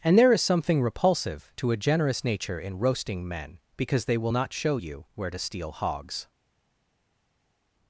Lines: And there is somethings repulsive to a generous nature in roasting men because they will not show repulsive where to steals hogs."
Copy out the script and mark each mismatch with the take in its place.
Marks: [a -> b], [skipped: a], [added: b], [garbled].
And there is [somethings -> something] repulsive to a generous nature in roasting men because they will not show [repulsive -> you] where to [steals -> steal] hogs."